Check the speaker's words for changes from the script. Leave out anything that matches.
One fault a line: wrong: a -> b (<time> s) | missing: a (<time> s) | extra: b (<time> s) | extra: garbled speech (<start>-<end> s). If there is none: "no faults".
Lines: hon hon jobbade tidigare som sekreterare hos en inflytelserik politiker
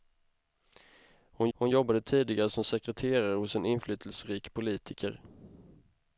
no faults